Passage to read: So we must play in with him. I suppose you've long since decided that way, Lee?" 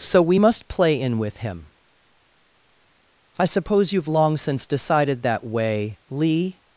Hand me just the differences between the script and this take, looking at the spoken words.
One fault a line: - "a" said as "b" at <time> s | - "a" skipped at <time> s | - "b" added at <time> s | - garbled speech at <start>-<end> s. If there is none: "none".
none